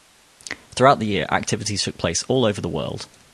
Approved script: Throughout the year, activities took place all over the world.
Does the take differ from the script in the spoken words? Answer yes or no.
no